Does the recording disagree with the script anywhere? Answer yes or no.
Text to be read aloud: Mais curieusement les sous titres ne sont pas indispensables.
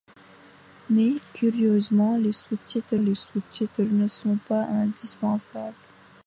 yes